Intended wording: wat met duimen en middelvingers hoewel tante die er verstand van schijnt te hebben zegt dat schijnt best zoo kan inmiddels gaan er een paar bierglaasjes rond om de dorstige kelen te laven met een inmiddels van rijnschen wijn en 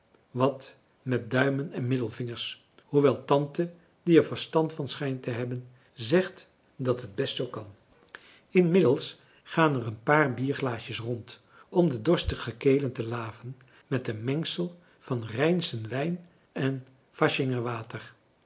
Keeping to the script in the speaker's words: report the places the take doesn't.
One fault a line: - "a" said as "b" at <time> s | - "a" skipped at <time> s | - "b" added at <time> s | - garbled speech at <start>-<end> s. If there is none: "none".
- "schijnt" said as "het" at 7.0 s
- "inmiddels" said as "mengsel" at 14.2 s